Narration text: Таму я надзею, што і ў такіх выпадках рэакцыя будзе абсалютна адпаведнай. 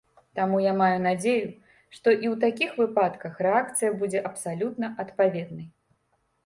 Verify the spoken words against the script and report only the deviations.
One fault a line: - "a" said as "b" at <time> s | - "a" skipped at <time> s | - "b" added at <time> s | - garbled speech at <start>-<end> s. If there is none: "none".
- "маю" added at 0.8 s